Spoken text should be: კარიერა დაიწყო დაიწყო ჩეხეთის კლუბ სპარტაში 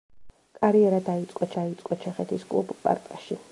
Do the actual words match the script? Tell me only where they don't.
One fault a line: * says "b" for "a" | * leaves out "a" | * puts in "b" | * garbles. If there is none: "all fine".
all fine